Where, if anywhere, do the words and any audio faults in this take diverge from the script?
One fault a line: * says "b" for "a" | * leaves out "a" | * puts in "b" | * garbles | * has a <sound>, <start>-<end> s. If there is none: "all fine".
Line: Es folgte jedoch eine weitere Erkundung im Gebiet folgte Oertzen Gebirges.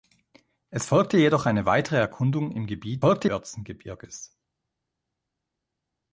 all fine